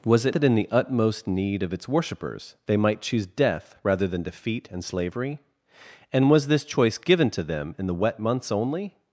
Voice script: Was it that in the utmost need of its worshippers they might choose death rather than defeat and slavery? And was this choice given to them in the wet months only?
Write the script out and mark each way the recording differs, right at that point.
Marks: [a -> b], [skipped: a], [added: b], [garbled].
Was it that in the utmost need of its worshippers they might choose death rather than defeat and slavery? And was this choice given to them in the wet months only?